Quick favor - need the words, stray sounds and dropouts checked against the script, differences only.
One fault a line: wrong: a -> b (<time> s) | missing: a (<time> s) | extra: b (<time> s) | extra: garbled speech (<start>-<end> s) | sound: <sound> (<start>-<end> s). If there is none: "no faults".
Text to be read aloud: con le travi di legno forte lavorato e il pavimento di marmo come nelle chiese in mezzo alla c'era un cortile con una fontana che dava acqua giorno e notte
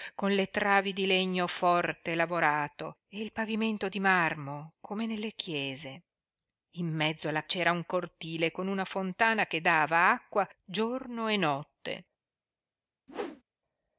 sound: whoosh (13.1-13.4 s)